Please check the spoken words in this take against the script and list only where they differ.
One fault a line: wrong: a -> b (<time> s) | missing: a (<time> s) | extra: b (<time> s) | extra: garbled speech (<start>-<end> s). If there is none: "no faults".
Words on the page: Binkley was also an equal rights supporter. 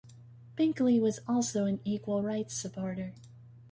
no faults